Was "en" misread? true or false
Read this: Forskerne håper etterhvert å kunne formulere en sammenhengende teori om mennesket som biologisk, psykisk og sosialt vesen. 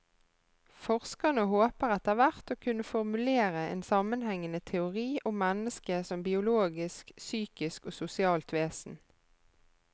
false